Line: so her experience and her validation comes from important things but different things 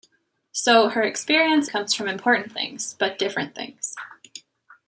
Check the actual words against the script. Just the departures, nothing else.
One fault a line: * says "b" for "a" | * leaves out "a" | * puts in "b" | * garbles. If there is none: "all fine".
* leaves out "and her validation"